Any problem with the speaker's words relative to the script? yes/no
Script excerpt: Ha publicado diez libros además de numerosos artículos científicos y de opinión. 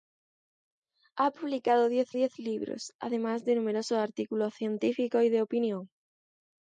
yes